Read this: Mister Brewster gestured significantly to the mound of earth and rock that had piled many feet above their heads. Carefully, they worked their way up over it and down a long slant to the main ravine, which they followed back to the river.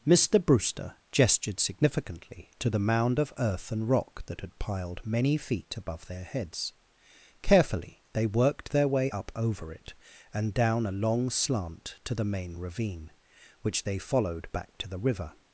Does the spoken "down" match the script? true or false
true